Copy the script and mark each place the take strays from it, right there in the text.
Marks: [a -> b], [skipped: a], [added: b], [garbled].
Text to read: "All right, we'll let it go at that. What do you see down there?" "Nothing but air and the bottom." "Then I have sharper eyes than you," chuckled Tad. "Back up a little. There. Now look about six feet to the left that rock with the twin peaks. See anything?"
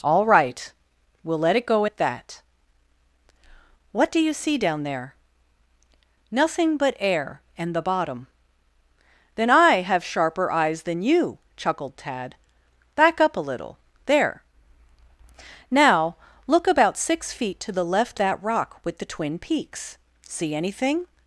"All right, we'll let it go at that. What do you see down there?" "Nothing but air and the bottom." "Then I have sharper eyes than you," chuckled Tad. "Back up a little. There. Now look about six feet to the left that rock with the twin peaks. See anything?"